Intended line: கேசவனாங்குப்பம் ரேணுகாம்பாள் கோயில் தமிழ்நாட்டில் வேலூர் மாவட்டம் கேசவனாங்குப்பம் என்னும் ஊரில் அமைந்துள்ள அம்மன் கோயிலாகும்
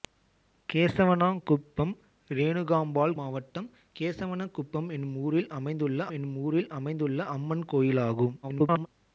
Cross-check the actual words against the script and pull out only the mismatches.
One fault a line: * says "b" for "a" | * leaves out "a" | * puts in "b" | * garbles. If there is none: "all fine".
* says "மாவட்டம் கேசவனாங்குப்பம் என்னும் ஊரில் அமைந்துள்ள" for "கோயில் தமிழ்நாட்டில் வேலூர் மாவட்டம் கேசவனாங்குப்பம்"
* garbles